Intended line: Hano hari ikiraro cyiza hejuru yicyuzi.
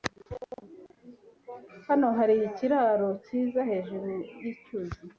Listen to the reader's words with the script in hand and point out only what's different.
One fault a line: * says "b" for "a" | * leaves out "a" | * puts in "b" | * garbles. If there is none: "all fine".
all fine